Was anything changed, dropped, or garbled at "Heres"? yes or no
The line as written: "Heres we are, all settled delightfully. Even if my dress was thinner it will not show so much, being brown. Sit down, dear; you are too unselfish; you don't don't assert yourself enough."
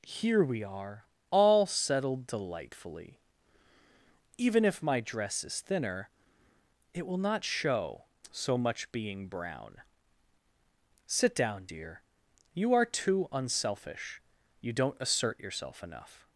yes